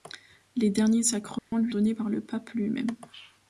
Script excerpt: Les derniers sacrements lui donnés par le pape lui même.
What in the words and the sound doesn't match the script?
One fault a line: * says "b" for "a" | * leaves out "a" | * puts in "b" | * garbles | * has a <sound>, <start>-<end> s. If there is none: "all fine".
* has a dropout, 1.4-1.5 s